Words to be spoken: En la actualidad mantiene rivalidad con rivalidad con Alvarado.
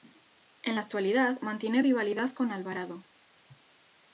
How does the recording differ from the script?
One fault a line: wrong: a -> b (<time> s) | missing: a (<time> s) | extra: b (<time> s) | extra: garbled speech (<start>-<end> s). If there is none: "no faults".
missing: rivalidad con (2.5 s)